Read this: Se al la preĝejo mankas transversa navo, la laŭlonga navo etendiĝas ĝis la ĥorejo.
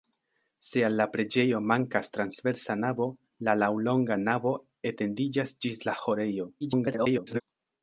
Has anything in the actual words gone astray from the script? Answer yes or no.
yes